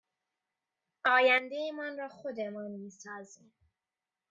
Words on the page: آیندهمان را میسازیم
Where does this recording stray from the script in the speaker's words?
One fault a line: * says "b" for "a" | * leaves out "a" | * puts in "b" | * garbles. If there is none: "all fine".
* puts in "خودمان"